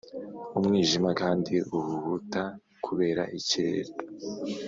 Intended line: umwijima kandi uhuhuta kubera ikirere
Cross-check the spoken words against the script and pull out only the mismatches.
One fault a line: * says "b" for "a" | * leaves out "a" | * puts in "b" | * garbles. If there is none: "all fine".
all fine